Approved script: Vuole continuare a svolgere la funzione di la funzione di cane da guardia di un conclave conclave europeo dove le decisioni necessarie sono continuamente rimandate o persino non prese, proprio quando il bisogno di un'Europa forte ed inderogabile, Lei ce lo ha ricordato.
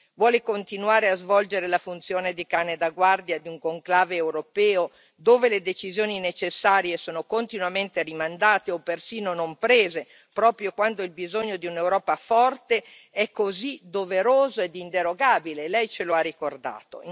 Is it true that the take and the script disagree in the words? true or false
true